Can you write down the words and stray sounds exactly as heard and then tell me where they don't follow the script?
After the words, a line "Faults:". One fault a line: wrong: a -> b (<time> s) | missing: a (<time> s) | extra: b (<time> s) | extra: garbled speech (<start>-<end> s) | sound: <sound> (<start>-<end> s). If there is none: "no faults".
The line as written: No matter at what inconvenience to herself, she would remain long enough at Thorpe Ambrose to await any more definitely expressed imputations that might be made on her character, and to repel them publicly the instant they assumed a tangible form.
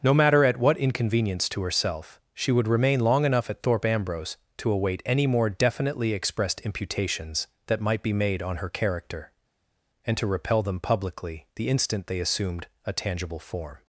No matter at what inconvenience to herself, she would remain long enough at Thorpe Ambrose to await any more definitely expressed imputations that might be made on her character, and to repel them publicly the instant they assumed a tangible form.
Faults:
no faults